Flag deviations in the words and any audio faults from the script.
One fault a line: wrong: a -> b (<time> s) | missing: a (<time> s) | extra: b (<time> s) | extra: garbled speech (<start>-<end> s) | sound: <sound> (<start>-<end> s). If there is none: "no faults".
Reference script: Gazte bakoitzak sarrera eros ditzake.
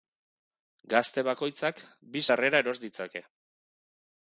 extra: bi (2.1 s)